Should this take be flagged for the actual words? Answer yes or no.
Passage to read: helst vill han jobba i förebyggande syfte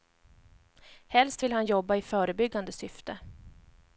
no